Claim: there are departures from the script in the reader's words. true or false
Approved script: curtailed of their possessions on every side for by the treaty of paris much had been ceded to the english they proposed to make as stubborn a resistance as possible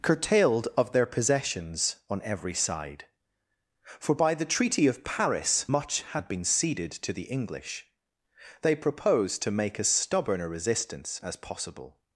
false